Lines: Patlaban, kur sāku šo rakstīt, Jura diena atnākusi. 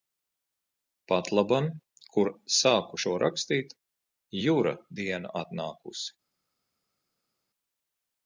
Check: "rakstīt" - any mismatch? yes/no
no